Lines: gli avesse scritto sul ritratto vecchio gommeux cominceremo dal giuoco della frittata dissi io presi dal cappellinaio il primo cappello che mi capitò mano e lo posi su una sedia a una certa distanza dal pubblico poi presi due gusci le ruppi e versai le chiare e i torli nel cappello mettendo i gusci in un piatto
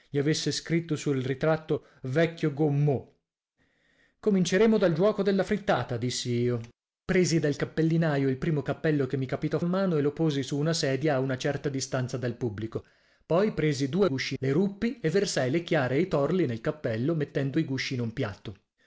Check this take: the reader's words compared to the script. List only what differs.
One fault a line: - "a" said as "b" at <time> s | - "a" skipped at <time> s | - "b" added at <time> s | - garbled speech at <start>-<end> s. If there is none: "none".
none